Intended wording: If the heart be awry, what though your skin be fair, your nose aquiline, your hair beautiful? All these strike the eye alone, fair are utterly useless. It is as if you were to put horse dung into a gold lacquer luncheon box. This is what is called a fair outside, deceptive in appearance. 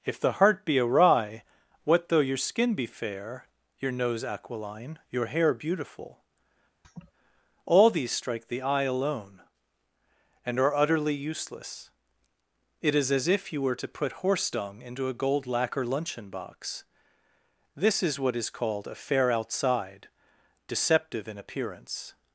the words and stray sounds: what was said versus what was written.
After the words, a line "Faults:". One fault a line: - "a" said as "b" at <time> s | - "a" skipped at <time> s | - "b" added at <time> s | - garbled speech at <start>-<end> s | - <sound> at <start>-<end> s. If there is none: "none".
If the heart be awry, what though your skin be fair, your nose aquiline, your hair beautiful? All these strike the eye alone, and are utterly useless. It is as if you were to put horse dung into a gold lacquer luncheon box. This is what is called a fair outside, deceptive in appearance.
Faults:
- laugh at 6.8-7.1 s
- "fair" said as "and" at 10.4 s